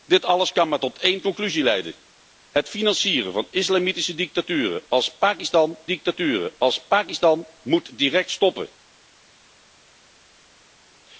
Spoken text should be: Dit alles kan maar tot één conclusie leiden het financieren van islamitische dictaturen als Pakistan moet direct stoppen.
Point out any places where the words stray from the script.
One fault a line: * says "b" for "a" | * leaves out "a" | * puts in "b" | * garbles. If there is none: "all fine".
* puts in "dictaturen als Pakistan"